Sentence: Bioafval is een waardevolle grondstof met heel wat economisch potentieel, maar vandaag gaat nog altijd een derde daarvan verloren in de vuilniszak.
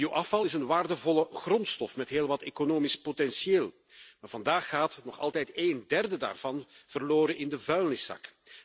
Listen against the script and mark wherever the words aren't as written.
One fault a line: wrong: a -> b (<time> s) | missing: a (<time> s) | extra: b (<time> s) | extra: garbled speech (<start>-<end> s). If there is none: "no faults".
no faults